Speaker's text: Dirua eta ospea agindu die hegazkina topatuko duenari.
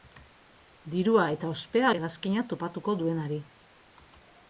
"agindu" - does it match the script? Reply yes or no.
no